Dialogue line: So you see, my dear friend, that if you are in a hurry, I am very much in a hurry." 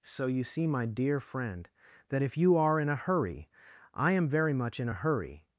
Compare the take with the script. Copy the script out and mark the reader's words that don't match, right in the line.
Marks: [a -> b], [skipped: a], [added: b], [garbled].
So you see, my dear friend, that if you are in a hurry, I am very much in a hurry."